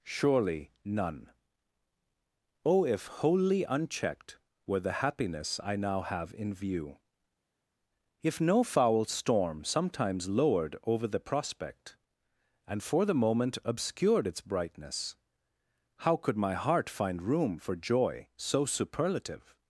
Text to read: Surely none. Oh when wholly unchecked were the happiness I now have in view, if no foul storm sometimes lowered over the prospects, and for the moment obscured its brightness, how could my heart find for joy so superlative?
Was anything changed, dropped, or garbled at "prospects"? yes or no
yes